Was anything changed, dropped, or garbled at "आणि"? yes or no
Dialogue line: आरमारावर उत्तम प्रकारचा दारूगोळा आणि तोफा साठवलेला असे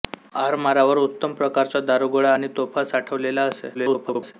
no